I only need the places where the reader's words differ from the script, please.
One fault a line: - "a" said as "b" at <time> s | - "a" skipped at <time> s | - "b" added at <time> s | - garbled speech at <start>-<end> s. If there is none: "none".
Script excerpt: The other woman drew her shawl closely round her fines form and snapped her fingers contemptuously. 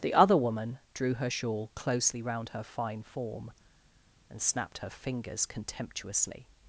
- "fines" said as "fine" at 2.6 s